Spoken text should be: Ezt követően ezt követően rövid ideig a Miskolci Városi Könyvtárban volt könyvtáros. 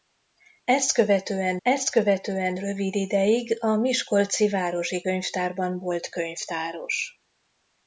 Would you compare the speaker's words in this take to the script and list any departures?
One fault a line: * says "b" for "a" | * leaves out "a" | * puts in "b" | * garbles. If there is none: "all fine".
all fine